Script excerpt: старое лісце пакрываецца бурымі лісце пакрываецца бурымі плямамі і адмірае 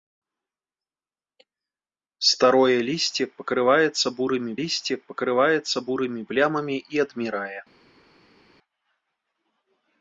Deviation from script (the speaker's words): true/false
false